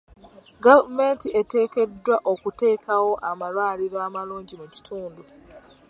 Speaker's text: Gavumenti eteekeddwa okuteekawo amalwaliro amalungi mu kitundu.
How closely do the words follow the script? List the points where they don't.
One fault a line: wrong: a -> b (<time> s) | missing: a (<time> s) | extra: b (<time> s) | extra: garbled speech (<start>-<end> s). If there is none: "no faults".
no faults